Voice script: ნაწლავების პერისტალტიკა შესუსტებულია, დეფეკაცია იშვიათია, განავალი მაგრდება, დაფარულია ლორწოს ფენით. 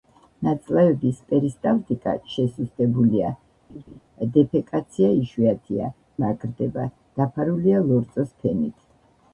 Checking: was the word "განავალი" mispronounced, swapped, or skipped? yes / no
yes